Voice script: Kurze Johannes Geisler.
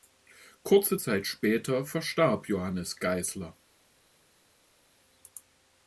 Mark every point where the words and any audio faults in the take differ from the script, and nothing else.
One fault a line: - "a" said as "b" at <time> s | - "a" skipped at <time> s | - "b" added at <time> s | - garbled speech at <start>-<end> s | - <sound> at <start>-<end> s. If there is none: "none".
- "Zeit später verstarb" added at 1.0 s